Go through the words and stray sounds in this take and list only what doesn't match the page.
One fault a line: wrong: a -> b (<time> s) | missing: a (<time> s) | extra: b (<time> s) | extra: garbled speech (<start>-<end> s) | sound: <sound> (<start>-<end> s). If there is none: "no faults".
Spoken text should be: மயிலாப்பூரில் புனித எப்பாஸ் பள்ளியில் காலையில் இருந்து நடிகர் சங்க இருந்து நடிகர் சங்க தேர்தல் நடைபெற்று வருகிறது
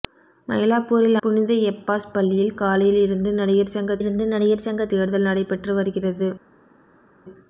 no faults